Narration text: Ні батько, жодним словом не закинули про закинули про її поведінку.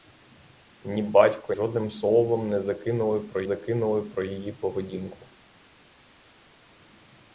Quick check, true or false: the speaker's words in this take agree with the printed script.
true